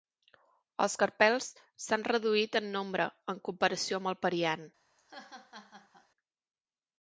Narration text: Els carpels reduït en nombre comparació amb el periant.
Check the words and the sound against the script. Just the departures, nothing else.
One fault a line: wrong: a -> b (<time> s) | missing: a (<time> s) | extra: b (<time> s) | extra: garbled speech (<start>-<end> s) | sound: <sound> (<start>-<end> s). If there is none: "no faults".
extra: s'han (1.9 s)
extra: en (3.3 s)
sound: laugh (5.0-6.1 s)